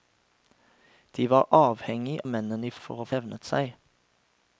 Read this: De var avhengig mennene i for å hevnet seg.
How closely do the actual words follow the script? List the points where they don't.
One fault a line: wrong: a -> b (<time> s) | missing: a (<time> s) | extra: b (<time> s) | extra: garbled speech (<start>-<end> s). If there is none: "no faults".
no faults